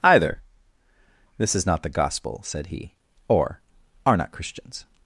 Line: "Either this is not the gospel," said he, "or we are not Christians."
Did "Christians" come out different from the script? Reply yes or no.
no